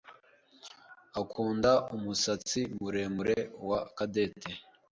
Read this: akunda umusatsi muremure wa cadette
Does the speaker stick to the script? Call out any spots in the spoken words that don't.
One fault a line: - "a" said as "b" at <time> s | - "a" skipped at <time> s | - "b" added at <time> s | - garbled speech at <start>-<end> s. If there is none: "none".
none